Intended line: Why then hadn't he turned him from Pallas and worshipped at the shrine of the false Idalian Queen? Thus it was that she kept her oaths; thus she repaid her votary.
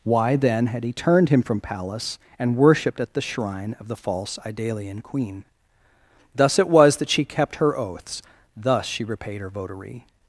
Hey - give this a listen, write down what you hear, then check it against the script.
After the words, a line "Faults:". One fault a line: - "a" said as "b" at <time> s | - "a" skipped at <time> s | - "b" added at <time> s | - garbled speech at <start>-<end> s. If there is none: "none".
Why then had he turned him from Pallas and worshipped at the shrine of the false Idalian Queen? Thus it was that she kept her oaths; thus she repaid her votary.
Faults:
- "hadn't" said as "had" at 0.7 s